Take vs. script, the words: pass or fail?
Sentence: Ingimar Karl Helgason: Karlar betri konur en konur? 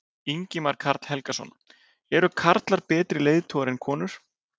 fail